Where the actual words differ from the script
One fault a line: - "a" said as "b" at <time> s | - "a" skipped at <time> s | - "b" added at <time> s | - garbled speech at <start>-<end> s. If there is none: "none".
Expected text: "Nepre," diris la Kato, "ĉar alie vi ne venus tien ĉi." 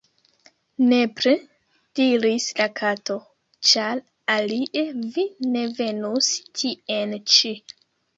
none